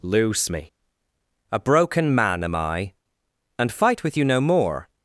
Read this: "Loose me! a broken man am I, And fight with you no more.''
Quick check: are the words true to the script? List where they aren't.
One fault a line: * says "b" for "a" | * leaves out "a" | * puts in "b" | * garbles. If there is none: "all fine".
all fine